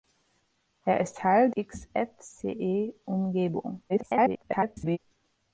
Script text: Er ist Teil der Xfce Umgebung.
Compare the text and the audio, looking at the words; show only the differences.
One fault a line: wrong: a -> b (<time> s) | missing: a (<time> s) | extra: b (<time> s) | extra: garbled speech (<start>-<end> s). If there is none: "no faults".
missing: der (1.5 s)
extra: garbled speech (3.9-5.0 s)